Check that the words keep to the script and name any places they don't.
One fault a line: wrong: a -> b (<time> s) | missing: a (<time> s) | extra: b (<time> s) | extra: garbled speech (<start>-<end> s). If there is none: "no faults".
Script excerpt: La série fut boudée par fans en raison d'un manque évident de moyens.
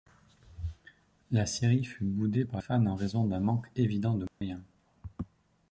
no faults